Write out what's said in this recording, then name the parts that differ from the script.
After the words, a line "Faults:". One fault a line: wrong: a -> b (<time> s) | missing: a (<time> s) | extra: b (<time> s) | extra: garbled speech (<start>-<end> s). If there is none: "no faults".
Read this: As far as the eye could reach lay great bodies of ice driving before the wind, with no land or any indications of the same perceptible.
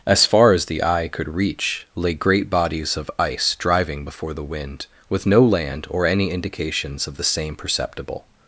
As far as the eye could reach lay great bodies of ice driving before the wind, with no land or any indications of the same perceptible.
Faults:
no faults